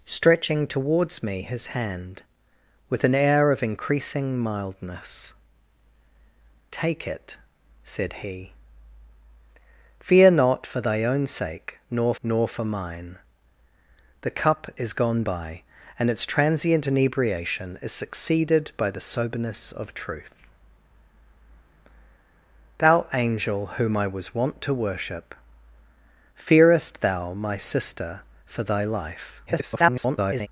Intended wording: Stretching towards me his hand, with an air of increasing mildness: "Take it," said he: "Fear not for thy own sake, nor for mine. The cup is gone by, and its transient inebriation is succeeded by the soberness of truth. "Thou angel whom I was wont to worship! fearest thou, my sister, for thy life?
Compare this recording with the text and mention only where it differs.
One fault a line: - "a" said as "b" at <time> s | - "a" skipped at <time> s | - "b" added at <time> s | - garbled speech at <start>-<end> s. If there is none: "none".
- "nor" added at 12.2 s
- garbled speech at 29.5-30.5 s